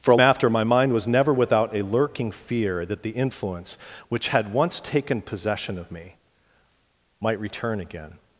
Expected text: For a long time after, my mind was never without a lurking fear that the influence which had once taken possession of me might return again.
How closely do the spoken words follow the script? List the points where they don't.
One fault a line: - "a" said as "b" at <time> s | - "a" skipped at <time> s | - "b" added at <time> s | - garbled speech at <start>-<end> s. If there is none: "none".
- "long time" skipped at 0.2 s